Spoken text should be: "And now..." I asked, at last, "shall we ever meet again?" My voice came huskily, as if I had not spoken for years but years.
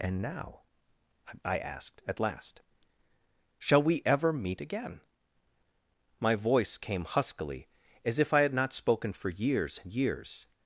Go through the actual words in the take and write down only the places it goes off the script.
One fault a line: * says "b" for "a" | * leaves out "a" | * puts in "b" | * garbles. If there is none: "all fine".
* says "and" for "but"